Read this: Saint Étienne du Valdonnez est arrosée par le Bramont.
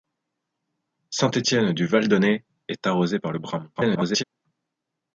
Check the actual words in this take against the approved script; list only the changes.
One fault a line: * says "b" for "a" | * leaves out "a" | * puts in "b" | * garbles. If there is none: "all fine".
* garbles